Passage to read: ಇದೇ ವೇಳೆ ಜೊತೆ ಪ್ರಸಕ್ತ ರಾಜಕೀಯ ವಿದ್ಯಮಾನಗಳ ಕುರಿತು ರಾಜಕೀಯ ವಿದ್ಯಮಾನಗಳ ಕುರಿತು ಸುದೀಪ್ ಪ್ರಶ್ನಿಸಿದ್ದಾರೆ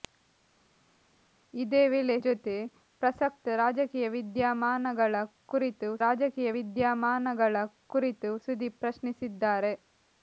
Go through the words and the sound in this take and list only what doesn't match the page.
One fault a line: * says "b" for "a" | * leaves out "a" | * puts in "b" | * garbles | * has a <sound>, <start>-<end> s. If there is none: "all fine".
all fine